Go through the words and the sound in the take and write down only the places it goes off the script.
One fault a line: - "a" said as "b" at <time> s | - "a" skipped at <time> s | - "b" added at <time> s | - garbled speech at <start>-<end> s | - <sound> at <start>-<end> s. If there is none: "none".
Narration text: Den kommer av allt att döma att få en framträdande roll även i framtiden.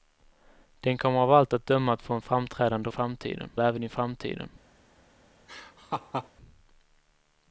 - "roll" said as "framtiden" at 2.9 s
- laugh at 5.5-6.3 s